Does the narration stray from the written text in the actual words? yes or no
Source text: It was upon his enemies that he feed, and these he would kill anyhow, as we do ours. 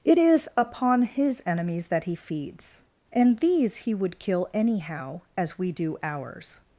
yes